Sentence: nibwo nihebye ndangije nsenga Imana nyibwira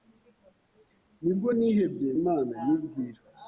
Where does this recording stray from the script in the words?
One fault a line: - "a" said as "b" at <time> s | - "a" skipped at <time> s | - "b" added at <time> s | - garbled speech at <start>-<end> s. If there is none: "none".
- "ndangije nsenga" skipped at 2.1 s